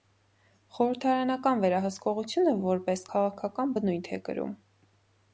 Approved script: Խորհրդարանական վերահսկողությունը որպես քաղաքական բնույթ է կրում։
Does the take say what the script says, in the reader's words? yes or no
yes